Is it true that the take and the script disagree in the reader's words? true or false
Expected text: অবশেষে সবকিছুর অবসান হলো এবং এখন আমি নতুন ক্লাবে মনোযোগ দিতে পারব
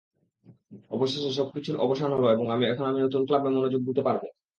false